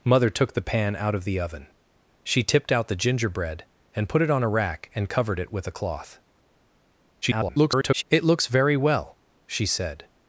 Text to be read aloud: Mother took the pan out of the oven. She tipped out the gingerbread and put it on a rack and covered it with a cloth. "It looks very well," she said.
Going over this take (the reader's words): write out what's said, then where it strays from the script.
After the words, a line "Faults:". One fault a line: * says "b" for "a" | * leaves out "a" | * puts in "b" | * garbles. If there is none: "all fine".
Mother took the pan out of the oven. She tipped out the gingerbread and put it on a rack and covered it with a cloth. [garbled] "It looks very well," she said.
Faults:
* garbles